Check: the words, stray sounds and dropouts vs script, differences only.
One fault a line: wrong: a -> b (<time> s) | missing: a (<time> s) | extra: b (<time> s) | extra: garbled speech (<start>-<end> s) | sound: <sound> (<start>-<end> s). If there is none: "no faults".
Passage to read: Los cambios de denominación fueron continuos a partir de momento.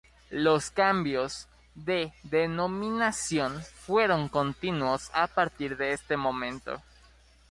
extra: este (5.9 s)